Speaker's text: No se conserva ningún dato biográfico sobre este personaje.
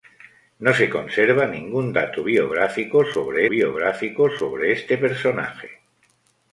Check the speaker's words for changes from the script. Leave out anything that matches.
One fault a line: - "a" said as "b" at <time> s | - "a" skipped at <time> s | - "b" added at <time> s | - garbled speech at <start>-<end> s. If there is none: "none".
- "biográfico sobre" added at 3.5 s